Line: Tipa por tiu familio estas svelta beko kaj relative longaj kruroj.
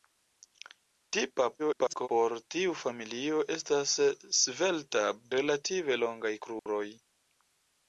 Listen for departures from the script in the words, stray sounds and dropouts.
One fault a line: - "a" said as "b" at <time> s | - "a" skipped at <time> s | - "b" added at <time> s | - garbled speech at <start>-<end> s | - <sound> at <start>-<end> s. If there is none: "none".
- garbled speech at 1.6-2.1 s
- "beko kaj" skipped at 5.1 s
- dropout at 6.6-6.7 s